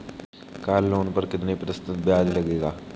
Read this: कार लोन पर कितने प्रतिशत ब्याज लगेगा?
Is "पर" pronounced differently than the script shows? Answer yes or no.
no